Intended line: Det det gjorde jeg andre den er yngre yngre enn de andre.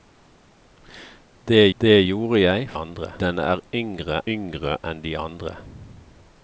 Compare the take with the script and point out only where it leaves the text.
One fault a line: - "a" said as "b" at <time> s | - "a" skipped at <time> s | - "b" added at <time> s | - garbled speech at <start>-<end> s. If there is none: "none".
none